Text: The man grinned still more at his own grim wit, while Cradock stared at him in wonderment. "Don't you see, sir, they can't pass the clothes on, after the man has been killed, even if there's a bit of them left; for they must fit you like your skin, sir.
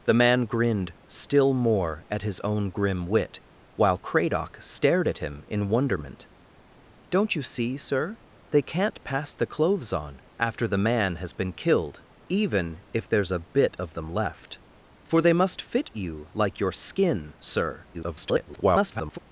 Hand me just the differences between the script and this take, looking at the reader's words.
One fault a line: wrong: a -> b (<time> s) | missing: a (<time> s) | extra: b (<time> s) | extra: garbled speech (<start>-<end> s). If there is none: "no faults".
extra: garbled speech (17.9-19.2 s)